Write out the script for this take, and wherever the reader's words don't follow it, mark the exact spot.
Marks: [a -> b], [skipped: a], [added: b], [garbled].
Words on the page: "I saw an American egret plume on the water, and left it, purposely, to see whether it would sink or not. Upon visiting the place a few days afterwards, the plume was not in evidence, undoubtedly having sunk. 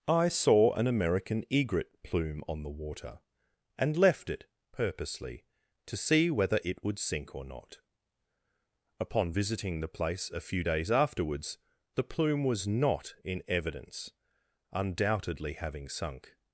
"I saw an American egret plume on the water, and left it, purposely, to see whether it would sink or not. Upon visiting the place a few days afterwards, the plume was not in evidence, undoubtedly having sunk.